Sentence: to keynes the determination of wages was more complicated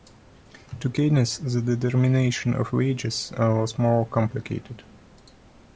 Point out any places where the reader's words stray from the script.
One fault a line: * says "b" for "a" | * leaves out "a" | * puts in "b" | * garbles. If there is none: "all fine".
all fine